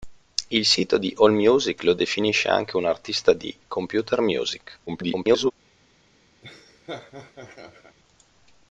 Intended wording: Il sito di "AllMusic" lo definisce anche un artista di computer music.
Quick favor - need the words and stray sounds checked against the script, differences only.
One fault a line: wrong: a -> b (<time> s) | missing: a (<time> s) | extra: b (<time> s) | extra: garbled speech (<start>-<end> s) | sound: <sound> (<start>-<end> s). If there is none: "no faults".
extra: garbled speech (4.9-5.5 s)
sound: laugh (6.4-8.0 s)